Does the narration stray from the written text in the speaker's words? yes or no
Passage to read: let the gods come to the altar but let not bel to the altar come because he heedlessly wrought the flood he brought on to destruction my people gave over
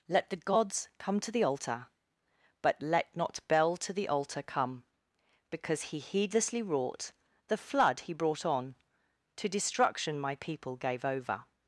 no